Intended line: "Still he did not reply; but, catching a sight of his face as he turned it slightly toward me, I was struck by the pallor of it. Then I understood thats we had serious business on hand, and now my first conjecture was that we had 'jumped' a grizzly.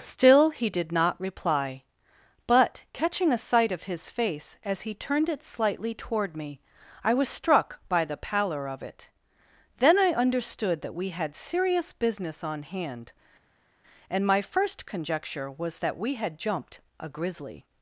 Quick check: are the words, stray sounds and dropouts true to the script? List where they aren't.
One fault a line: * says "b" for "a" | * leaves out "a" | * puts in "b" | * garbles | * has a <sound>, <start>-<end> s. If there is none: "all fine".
* says "that" for "thats"
* leaves out "now"